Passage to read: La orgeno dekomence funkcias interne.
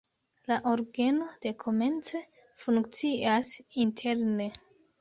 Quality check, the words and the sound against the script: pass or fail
pass